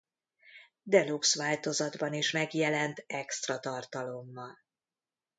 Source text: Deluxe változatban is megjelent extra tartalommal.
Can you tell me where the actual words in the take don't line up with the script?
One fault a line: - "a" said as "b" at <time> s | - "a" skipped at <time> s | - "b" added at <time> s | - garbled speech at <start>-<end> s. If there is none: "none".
none